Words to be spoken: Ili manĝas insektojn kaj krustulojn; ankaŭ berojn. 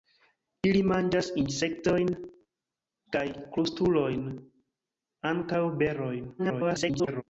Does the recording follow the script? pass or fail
fail